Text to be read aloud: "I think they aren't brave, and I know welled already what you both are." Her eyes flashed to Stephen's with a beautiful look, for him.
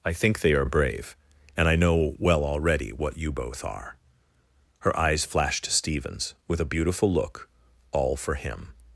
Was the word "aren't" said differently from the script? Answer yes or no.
yes